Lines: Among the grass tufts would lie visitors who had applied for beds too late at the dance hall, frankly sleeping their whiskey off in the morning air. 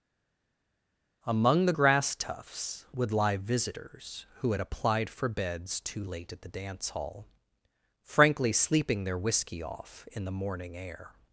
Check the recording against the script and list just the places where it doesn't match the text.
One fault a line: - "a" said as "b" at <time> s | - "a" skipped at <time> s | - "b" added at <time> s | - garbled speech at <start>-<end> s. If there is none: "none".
none